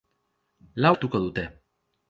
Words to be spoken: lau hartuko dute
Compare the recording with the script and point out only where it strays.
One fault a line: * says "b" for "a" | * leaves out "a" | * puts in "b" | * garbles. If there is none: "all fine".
all fine